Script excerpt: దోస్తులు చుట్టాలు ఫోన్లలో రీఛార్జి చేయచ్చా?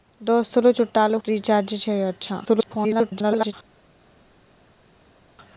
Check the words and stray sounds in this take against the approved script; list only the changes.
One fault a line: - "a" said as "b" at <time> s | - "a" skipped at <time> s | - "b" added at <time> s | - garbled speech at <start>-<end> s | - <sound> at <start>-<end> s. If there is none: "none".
- "ఫోన్లలో" skipped at 1.2 s
- garbled speech at 2.5-3.5 s